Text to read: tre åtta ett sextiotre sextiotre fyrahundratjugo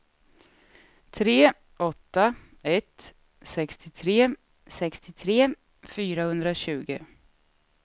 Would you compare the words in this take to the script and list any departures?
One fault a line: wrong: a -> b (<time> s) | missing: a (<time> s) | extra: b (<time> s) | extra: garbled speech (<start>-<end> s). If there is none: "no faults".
no faults